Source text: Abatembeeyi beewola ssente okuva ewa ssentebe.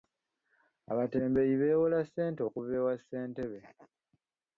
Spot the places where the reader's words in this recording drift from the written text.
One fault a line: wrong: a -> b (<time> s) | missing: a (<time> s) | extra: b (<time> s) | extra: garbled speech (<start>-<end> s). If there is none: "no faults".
no faults